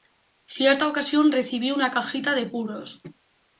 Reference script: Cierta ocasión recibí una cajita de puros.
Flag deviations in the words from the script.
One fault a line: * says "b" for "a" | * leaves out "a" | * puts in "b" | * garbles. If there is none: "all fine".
all fine